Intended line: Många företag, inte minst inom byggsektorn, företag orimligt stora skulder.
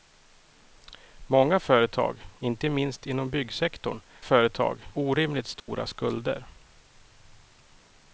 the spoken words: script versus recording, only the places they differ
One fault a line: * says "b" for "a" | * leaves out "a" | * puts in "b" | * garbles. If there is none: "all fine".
all fine